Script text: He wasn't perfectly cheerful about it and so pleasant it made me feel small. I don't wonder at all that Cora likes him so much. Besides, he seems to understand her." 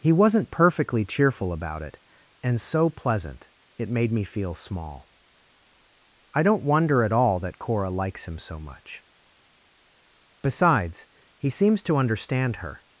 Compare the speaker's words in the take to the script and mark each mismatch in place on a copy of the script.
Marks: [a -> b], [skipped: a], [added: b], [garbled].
He wasn't perfectly cheerful about it and so pleasant it made me feel small. I don't wonder at all that Cora likes him so much. Besides, he seems to understand her."